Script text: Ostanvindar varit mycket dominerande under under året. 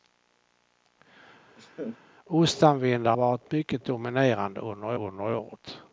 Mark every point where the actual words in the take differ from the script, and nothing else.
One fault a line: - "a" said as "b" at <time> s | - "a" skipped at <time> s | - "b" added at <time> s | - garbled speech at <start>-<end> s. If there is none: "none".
none